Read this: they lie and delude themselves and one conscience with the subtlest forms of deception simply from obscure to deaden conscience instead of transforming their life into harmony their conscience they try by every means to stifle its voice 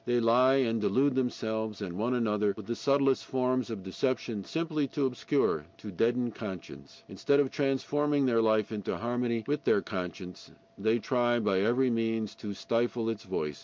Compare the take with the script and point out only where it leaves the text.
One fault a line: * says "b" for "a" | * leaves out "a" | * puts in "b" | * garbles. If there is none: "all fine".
* says "another" for "conscience"
* says "to" for "from"
* puts in "with"